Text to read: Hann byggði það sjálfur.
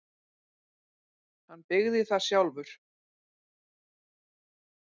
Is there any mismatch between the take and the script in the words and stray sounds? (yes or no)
no